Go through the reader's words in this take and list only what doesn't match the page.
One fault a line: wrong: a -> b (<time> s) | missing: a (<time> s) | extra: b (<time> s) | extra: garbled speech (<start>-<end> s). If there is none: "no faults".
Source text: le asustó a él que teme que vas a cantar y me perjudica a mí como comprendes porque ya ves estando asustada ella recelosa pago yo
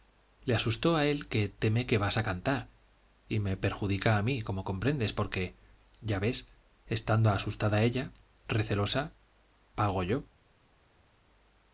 no faults